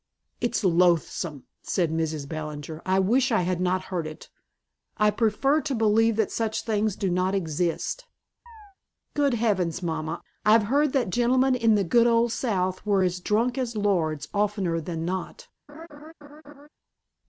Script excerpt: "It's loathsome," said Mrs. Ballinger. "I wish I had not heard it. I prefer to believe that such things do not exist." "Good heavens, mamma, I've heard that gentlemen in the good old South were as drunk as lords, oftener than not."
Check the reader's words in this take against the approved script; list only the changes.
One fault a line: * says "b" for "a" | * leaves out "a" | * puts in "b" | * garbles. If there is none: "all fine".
all fine